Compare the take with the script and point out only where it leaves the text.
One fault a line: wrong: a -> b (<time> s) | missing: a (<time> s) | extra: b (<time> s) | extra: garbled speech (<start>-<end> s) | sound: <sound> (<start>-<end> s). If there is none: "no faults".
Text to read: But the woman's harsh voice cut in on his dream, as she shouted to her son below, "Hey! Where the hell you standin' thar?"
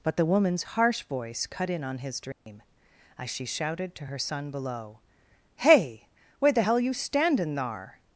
sound: dropout (2.3-2.5 s)